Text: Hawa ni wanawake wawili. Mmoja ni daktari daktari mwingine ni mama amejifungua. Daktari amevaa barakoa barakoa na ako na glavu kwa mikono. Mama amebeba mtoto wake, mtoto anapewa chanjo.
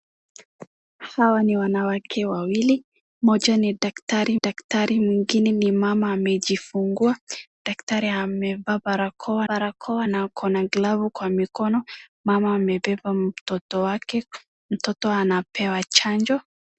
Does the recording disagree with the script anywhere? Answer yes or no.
no